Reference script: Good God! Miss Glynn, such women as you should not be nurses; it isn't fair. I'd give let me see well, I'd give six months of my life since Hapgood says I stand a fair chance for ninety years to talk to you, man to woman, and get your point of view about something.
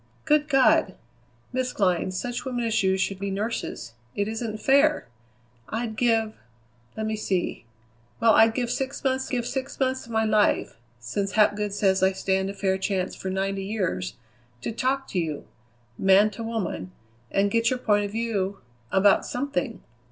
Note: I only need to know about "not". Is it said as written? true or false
false